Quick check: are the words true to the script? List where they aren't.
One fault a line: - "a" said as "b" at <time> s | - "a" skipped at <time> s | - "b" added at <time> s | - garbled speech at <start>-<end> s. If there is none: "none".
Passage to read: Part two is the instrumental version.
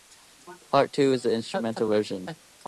none